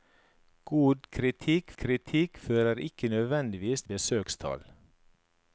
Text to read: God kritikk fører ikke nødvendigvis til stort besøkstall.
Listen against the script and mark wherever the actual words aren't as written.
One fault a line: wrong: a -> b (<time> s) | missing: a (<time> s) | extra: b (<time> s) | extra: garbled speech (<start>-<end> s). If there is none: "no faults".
extra: kritikk (1.8 s)
missing: til stort (3.8 s)